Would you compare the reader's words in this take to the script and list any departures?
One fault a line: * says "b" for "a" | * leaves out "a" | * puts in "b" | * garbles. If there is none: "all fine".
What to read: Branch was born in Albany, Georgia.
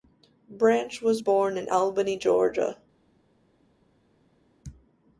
all fine